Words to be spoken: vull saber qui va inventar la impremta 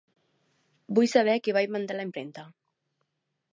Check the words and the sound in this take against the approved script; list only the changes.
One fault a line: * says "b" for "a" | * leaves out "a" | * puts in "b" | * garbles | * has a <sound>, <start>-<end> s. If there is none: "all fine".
all fine